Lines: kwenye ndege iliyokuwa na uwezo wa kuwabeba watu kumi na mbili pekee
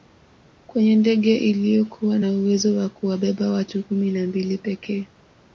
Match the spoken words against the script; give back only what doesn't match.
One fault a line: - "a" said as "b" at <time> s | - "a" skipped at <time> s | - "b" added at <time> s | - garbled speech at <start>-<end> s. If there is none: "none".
none